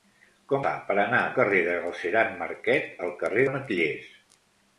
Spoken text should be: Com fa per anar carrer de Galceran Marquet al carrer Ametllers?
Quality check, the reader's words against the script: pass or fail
pass